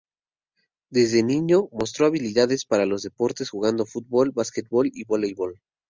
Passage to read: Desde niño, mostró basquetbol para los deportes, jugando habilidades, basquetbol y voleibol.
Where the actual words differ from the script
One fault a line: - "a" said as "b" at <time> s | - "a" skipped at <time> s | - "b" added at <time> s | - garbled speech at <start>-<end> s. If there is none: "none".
- "basquetbol" said as "habilidades" at 2.1 s
- "habilidades" said as "fútbol" at 3.8 s